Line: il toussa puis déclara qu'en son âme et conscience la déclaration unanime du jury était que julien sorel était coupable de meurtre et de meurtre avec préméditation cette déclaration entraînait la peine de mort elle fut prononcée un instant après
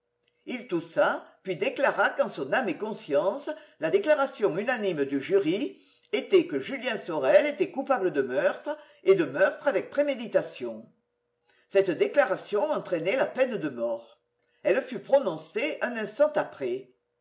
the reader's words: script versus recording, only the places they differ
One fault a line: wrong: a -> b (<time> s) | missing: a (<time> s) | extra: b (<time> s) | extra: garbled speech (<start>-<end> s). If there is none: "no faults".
no faults